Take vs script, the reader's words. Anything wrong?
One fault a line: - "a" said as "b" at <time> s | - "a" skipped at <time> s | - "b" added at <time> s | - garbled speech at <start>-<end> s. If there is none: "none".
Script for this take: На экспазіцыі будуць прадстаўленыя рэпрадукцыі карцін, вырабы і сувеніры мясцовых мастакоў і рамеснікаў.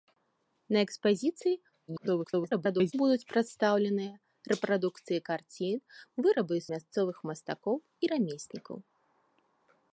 - garbled speech at 1.9-2.9 s
- "сувеніры" skipped at 6.6 s